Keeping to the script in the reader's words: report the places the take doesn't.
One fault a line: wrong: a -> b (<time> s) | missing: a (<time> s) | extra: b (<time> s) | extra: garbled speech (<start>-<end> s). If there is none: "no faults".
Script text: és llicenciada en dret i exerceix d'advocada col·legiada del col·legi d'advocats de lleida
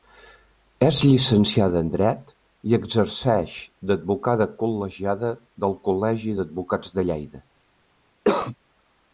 no faults